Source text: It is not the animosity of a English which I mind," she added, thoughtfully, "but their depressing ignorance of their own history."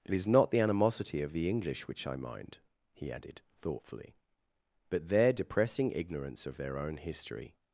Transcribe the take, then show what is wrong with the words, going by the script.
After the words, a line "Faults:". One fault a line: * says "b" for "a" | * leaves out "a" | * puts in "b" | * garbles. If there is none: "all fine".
It is not the animosity of the English which I mind," he added, thoughtfully, "but their depressing ignorance of their own history."
Faults:
* says "the" for "a"
* says "he" for "she"